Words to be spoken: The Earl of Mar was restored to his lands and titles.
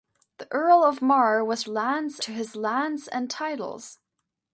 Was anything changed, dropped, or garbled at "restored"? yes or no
yes